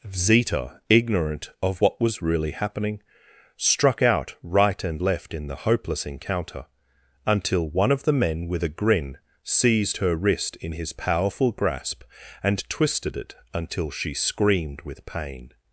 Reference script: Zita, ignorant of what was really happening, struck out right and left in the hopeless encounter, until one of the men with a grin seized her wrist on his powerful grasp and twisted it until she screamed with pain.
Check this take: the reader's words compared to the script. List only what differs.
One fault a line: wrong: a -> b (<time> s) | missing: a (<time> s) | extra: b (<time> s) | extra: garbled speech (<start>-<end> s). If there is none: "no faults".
wrong: on -> in (10.6 s)